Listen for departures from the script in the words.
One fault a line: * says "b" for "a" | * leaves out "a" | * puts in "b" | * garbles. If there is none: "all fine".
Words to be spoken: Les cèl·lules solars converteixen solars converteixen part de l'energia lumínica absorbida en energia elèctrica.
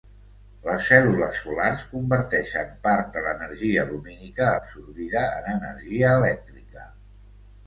* leaves out "solars converteixen"